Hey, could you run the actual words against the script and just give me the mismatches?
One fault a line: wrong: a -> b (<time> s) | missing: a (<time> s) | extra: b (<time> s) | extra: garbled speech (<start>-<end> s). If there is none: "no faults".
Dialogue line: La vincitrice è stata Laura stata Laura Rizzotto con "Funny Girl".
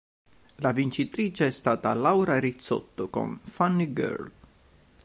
missing: stata Laura (2.4 s)